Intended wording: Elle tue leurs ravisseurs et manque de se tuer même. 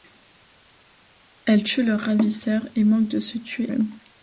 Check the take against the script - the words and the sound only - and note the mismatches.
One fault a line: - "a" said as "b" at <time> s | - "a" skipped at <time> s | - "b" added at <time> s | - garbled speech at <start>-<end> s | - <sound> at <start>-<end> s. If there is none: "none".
none